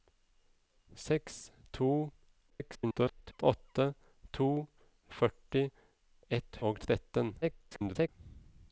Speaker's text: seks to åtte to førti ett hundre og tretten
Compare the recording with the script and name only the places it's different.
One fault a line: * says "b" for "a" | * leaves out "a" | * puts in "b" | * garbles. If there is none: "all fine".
* garbles
* leaves out "hundre"
* garbles